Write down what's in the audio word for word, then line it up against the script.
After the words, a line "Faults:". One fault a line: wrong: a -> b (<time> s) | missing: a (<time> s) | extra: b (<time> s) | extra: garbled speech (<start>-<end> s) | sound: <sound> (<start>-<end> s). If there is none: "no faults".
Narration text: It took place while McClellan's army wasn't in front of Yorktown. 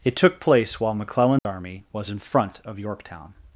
It took place while McClellan's army was in front of Yorktown.
Faults:
sound: dropout (1.4-1.5 s)
wrong: wasn't -> was (1.9 s)